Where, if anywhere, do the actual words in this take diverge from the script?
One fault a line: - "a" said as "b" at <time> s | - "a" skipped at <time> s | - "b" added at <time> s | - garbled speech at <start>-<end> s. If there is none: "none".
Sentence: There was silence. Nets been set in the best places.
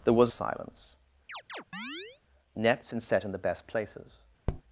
none